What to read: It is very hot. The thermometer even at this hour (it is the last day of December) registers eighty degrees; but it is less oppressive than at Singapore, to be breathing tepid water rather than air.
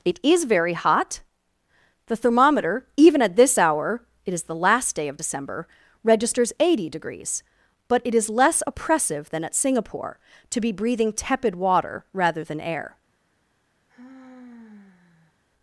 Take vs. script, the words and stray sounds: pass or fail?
fail